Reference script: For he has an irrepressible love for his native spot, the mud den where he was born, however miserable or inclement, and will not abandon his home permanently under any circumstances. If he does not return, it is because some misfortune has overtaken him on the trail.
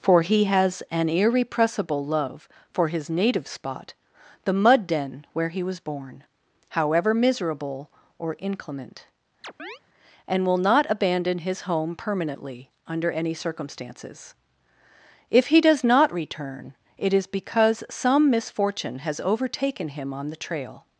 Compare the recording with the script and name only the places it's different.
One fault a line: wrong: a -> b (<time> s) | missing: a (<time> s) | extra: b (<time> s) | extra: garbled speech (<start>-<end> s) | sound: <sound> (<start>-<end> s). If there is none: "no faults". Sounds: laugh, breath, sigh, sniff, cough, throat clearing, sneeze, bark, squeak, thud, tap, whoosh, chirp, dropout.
sound: chirp (9.4-9.8 s)